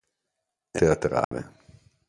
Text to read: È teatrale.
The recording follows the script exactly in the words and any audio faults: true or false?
false